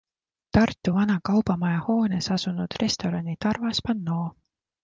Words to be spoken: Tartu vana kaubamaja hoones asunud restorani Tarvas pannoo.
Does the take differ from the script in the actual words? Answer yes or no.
no